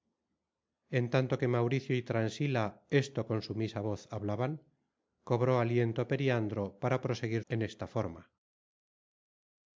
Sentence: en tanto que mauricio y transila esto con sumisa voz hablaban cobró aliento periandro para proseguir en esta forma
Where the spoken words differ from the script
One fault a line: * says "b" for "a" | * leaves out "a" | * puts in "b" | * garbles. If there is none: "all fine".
all fine